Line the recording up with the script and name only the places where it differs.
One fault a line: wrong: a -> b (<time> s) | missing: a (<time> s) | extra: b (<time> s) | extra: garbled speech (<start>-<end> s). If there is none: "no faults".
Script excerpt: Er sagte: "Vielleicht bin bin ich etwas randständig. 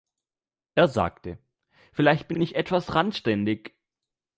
no faults